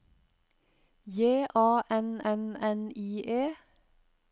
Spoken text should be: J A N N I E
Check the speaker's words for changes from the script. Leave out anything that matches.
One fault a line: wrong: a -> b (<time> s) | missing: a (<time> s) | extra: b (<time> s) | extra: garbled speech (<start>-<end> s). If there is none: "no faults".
extra: N (2.6 s)